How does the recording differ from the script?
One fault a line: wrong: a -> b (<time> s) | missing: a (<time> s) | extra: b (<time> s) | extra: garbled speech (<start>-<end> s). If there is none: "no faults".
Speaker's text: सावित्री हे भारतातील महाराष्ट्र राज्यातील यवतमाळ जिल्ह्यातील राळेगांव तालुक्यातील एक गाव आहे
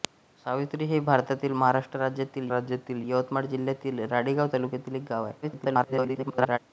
extra: राज्यातील (2.5 s)
extra: garbled speech (5.4-6.6 s)